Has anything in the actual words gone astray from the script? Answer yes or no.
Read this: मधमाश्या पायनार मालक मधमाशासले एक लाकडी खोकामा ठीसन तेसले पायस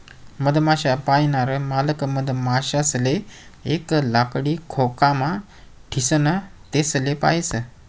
no